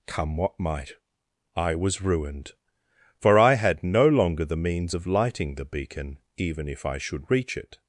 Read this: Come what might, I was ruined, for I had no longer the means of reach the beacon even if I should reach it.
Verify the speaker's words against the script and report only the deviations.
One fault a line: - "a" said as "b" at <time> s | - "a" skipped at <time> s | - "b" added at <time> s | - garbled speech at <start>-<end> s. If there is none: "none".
- "reach" said as "lighting" at 5.1 s